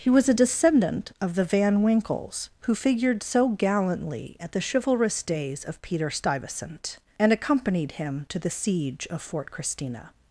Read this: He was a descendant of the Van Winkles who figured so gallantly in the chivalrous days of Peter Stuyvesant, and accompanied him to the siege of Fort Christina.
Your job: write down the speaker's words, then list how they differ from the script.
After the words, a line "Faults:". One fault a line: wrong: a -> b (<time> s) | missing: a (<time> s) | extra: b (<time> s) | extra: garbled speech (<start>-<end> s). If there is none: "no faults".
He was a descendant of the Van Winkles who figured so gallantly at the chivalrous days of Peter Stuyvesant, and accompanied him to the siege of Fort Christina.
Faults:
wrong: in -> at (4.4 s)